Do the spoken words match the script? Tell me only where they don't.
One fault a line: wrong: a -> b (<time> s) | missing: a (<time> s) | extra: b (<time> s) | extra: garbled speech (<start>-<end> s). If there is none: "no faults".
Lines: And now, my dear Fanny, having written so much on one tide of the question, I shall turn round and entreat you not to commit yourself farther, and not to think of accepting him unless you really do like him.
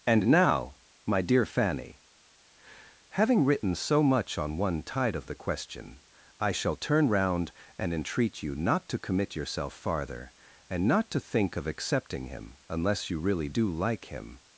no faults